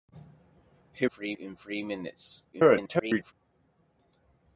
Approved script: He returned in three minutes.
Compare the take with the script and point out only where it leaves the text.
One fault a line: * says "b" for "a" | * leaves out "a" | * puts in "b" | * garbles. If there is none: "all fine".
* says "three" for "returned"
* garbles